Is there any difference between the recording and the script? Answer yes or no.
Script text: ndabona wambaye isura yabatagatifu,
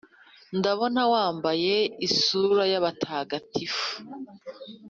no